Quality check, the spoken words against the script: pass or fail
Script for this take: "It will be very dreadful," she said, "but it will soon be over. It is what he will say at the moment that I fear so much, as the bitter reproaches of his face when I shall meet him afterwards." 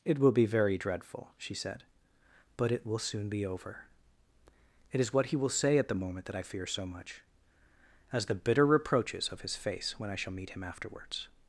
pass